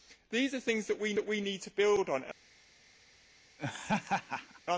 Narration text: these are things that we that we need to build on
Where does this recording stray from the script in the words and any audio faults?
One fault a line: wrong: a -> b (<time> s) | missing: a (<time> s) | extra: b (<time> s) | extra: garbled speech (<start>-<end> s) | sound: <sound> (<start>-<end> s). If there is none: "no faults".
sound: laugh (3.6-4.6 s)